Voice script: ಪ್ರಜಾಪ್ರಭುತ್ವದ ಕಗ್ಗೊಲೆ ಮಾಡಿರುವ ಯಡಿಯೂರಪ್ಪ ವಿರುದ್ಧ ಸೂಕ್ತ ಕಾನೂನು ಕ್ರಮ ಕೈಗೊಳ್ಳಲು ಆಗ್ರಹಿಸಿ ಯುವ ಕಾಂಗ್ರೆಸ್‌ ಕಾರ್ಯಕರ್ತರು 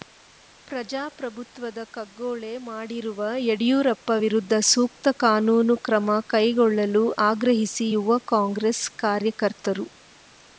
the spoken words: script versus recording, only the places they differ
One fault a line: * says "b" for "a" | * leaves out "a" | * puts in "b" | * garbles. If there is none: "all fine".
all fine